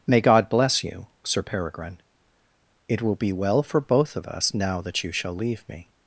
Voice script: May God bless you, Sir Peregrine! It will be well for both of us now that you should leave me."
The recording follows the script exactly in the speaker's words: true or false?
false